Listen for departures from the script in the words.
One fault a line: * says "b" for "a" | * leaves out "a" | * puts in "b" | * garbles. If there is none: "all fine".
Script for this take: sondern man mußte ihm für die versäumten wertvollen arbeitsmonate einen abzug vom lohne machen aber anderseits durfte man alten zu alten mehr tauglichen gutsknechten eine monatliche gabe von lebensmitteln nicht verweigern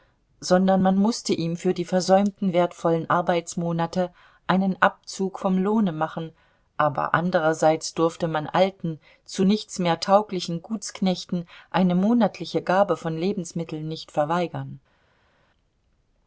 * says "nichts" for "alten"